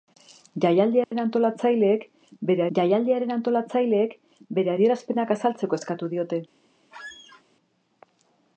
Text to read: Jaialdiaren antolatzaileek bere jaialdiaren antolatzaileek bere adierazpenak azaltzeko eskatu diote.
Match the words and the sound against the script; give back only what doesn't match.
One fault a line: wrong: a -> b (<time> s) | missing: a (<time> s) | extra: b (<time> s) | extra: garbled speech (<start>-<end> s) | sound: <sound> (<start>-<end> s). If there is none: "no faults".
sound: dropout (1.0-1.1 s)
sound: squeak (6.9-7.4 s)